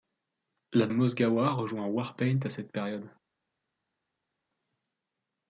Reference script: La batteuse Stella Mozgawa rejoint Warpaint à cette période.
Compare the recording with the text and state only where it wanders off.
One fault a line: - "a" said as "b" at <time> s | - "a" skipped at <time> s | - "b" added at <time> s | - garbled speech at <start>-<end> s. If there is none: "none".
- "batteuse Stella" skipped at 0.9 s